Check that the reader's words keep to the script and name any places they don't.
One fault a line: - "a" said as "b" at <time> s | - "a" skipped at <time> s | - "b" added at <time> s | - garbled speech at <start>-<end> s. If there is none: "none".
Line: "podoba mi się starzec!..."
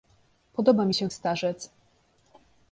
none